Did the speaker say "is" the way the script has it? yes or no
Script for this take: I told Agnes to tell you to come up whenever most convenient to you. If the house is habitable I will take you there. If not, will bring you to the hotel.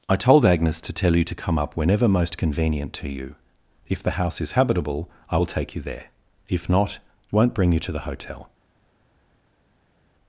yes